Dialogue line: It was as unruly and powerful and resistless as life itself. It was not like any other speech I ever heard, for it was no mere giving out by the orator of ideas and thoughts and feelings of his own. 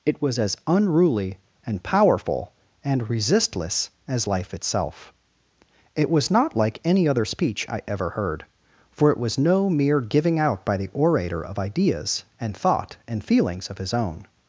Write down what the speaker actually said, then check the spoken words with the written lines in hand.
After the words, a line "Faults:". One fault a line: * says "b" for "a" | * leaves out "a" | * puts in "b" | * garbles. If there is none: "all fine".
It was as unruly and powerful and resistless as life itself. It was not like any other speech I ever heard, for it was no mere giving out by the orator of ideas and thought and feelings of his own.
Faults:
* says "thought" for "thoughts"